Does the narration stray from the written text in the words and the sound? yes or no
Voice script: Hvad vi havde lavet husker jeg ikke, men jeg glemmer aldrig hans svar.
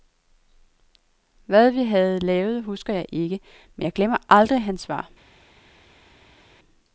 no